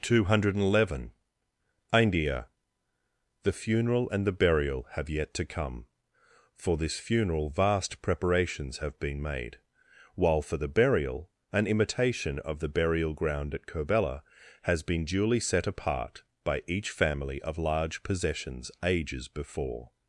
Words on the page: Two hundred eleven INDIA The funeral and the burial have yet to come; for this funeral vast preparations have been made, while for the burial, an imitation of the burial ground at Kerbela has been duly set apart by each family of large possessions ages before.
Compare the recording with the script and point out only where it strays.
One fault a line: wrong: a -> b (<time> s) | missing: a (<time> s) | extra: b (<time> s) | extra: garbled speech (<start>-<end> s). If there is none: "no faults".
no faults